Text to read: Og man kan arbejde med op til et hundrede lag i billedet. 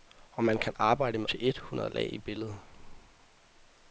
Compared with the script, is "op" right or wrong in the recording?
wrong